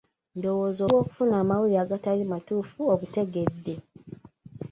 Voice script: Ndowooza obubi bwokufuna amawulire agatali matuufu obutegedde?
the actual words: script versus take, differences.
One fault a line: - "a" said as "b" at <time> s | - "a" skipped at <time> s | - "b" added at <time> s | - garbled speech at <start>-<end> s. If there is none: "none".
- "obubi" skipped at 0.8 s